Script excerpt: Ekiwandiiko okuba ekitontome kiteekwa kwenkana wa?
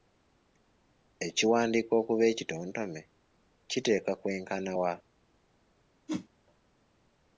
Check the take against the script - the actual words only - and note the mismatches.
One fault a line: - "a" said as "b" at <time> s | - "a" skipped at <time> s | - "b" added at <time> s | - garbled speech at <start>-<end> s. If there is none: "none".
none